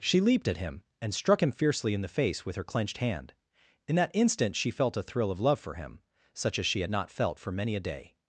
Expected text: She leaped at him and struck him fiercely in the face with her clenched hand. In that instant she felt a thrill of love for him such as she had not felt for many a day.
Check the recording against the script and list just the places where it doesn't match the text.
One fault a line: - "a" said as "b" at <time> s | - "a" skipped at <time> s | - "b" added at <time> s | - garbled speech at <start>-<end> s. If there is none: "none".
none